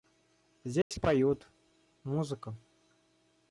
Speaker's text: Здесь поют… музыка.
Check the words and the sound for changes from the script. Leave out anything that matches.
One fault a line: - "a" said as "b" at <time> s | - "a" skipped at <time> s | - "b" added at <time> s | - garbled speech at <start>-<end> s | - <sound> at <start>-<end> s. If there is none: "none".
- dropout at 0.8-0.9 s